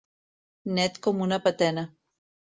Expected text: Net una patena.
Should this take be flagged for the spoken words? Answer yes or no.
yes